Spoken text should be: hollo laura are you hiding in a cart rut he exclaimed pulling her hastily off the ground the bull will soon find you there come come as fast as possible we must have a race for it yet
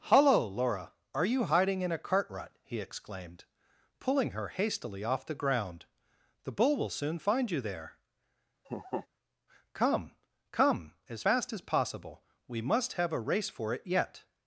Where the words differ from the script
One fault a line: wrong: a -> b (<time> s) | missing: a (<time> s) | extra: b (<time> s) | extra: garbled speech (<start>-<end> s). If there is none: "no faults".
no faults